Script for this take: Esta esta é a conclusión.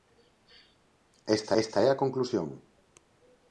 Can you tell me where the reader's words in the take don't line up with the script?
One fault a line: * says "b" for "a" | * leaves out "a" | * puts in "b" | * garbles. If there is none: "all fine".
all fine